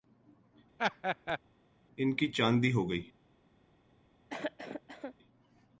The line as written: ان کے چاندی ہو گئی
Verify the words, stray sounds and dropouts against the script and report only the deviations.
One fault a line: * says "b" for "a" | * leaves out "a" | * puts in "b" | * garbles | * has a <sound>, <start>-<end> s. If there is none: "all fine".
* has a laugh, 0.8-1.4 s
* says "کی" for "کے"
* has a cough, 4.3-5.1 s